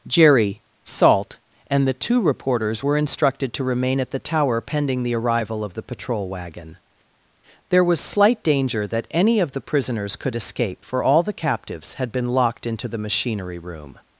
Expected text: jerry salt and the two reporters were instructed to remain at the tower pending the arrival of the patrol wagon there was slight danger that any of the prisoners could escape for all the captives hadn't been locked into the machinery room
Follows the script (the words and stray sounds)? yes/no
no